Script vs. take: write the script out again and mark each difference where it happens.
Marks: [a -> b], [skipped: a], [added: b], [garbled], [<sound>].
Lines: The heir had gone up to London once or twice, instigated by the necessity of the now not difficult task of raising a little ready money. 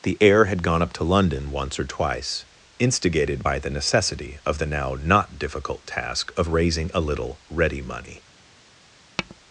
The heir had gone up to London once or twice, instigated by the necessity of the now not difficult task of raising a little ready money. [tap]